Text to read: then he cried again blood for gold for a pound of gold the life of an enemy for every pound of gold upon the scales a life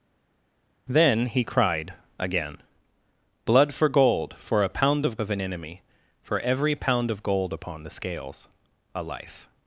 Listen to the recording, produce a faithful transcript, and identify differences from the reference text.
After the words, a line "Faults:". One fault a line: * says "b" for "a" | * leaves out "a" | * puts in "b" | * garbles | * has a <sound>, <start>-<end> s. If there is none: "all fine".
then he cried again blood for gold for a pound of of an enemy for every pound of gold upon the scales a life
Faults:
* leaves out "gold the life"